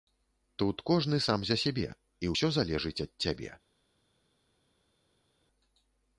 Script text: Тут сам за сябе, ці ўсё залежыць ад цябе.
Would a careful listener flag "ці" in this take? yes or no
yes